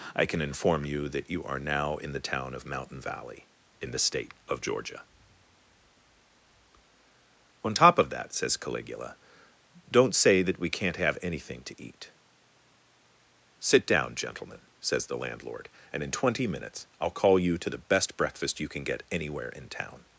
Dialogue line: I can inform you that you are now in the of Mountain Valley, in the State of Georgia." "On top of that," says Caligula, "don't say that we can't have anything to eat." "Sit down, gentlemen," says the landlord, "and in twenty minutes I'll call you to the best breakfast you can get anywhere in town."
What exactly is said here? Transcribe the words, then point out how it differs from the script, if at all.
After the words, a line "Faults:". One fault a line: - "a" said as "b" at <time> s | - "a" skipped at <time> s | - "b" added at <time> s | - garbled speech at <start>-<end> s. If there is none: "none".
I can inform you that you are now in the town of Mountain Valley, in the State of Georgia." "On top of that," says Caligula, "don't say that we can't have anything to eat." "Sit down, gentlemen," says the landlord, "and in twenty minutes I'll call you to the best breakfast you can get anywhere in town."
Faults:
- "town" added at 2.2 s